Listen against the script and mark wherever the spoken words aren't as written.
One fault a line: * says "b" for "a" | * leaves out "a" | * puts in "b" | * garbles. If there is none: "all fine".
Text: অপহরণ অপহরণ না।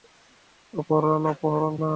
all fine